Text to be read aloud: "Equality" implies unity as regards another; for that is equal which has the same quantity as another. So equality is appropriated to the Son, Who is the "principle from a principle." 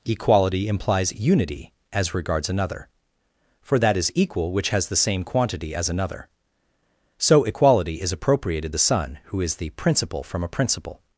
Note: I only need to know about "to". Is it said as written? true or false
false